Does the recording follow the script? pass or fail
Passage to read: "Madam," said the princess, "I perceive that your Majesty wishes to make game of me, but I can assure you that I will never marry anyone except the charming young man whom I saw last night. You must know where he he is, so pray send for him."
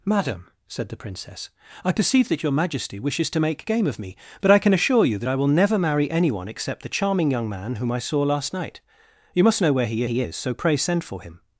pass